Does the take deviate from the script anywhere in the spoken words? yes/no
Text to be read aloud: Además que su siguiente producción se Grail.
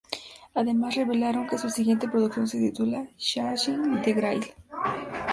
yes